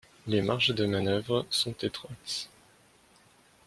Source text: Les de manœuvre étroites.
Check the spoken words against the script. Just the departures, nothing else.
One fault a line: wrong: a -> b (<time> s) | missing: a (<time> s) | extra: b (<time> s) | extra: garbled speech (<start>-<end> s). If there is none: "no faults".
extra: marges (0.4 s)
extra: sont (1.5 s)